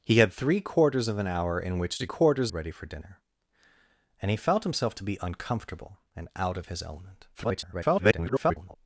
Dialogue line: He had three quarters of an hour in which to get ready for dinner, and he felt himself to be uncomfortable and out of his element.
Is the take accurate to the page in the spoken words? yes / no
no